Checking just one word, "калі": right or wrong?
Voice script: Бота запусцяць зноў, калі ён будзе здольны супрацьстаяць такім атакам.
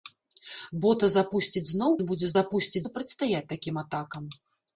wrong